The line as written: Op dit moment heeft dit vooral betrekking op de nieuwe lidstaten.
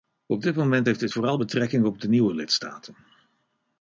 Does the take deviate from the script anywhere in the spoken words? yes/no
no